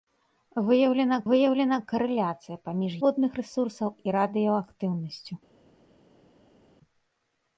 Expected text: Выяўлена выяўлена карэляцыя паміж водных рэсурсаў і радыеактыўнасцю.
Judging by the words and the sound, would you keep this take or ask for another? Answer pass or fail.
pass